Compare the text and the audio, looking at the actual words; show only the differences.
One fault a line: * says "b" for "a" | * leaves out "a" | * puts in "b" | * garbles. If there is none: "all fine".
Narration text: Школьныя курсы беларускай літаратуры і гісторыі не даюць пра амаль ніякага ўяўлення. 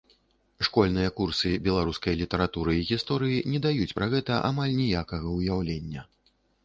* puts in "гэта"